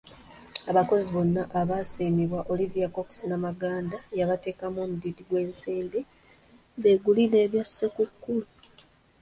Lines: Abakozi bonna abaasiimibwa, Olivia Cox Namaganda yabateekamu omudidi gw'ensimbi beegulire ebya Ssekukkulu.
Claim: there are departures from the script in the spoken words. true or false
false